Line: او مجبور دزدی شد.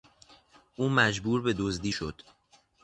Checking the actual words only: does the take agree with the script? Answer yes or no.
no